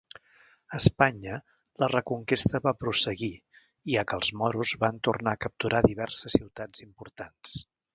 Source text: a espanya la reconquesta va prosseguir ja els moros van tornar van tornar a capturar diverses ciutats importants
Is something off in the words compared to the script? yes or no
yes